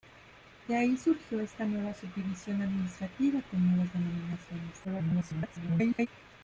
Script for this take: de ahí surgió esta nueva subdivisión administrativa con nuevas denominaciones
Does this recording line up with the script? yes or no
no